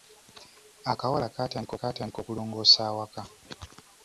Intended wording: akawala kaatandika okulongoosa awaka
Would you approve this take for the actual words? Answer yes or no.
no